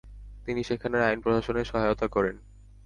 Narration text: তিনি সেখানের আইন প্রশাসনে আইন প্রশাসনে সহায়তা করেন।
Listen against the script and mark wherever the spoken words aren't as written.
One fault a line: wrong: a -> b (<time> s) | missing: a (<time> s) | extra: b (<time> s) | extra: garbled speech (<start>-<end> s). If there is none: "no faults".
missing: আইন প্রশাসনে (1.6 s)